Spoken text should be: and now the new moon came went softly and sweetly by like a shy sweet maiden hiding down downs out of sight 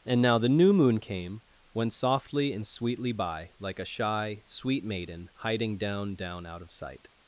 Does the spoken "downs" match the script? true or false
false